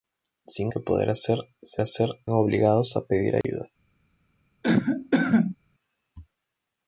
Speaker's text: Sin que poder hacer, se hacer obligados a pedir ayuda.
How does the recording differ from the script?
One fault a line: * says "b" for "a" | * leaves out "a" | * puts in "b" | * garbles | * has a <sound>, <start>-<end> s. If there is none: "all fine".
* has a dropout, 3.4-3.4 s
* has a cough, 4.6-5.6 s